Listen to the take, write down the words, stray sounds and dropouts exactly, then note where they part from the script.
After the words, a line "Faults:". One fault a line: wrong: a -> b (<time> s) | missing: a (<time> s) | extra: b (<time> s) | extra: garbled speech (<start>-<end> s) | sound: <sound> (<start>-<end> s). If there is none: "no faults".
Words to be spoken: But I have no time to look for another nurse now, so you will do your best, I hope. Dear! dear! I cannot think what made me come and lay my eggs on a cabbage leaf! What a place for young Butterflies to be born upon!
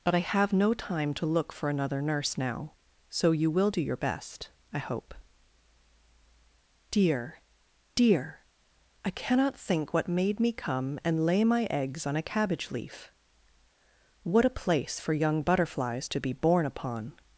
But I have no time to look for another nurse now, so you will do your best, I hope. Dear! dear! I cannot think what made me come and lay my eggs on a cabbage leaf! What a place for young Butterflies to be born upon!
Faults:
no faults